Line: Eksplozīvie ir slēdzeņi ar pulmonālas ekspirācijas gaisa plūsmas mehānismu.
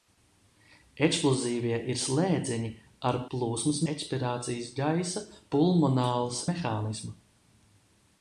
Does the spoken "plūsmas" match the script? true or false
false